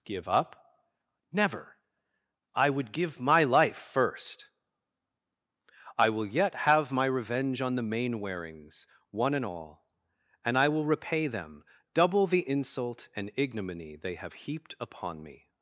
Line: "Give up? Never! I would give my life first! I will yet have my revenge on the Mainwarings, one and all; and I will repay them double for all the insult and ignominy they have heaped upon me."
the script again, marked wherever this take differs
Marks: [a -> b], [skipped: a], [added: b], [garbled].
"Give up? Never! I would give my life first! I will yet have my revenge on the Mainwarings, one and all; and I will repay them double [skipped: for all] the insult and ignominy they have heaped upon me."